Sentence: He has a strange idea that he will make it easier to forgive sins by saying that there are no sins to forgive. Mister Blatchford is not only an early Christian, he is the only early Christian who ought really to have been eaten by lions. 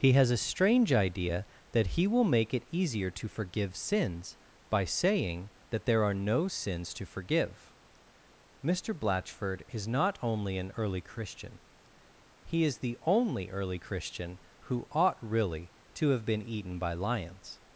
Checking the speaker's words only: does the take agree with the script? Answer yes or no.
yes